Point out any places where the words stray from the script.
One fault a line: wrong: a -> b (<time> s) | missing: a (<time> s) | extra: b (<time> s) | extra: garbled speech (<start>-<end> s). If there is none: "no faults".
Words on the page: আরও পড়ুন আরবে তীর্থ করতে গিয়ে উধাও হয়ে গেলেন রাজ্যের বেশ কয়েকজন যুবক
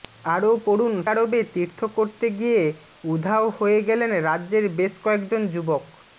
no faults